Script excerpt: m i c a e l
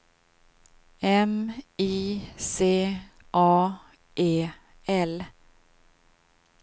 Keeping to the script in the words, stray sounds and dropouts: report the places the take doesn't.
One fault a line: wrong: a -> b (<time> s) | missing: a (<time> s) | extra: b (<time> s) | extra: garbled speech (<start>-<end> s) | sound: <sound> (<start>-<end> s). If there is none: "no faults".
no faults